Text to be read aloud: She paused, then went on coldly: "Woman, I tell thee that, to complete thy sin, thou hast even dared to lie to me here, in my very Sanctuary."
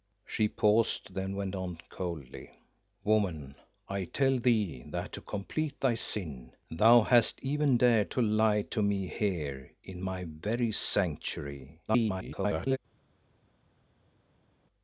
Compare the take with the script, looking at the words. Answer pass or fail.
fail